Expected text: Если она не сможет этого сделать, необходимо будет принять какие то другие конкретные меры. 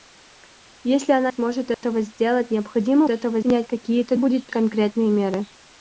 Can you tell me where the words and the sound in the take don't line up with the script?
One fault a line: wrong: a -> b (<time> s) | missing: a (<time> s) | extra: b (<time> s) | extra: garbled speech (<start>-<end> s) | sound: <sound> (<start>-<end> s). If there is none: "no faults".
missing: не (1.3 s)
sound: dropout (1.7-1.8 s)
wrong: будет -> этого (3.1 s)
wrong: другие -> будет (4.2 s)